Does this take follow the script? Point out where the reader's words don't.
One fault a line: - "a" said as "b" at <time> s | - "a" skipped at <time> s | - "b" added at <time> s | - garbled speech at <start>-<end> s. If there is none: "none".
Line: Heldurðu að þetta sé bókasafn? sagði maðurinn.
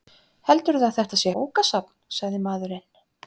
none